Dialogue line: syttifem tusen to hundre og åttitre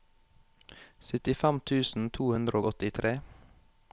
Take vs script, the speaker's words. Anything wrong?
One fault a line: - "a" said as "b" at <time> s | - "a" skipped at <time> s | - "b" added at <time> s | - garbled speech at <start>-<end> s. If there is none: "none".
none